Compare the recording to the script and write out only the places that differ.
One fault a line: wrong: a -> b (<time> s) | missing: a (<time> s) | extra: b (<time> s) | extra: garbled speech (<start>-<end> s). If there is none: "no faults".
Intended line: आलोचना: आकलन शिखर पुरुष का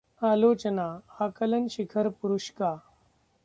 no faults